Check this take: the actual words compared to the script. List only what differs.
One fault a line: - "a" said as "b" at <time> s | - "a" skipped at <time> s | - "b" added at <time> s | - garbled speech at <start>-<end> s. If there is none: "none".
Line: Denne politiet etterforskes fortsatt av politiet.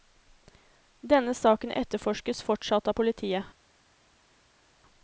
- "politiet" said as "saken" at 1.3 s